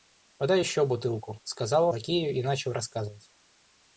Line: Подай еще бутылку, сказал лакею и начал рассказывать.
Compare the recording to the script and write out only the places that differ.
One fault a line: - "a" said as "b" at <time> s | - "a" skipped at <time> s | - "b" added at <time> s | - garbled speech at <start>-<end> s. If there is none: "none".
none